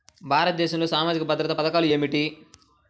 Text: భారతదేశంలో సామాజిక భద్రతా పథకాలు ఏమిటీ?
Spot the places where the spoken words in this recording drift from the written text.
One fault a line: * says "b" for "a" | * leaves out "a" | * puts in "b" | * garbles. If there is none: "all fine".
all fine